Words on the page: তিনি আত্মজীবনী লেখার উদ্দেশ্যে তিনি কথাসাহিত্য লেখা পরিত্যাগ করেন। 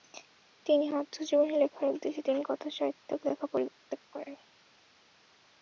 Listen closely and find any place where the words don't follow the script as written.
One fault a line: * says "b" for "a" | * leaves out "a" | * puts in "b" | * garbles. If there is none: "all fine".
all fine